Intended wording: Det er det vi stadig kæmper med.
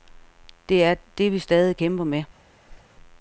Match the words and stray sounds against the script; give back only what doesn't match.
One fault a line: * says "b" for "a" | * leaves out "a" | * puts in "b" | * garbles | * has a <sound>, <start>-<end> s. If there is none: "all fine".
* has a whoosh, 2.7-2.8 s